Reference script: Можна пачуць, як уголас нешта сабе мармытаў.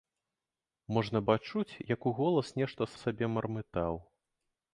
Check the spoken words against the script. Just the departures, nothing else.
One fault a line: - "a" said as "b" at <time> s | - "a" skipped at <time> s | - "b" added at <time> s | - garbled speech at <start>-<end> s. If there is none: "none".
none